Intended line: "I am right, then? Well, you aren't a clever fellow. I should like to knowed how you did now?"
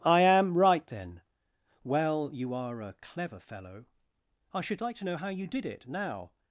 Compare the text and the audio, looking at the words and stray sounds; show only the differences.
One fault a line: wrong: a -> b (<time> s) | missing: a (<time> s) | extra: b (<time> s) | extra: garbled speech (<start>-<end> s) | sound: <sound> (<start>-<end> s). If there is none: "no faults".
wrong: aren't -> are (2.5 s)
wrong: knowed -> know (5.0 s)
extra: it (5.7 s)